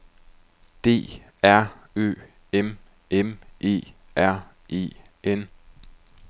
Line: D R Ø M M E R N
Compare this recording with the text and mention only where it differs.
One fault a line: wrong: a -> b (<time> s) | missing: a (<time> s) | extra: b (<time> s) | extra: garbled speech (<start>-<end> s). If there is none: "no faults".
extra: E (4.7 s)